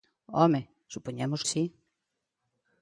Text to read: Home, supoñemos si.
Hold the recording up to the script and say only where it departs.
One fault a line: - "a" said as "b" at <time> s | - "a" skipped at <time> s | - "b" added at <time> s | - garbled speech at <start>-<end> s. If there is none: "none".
none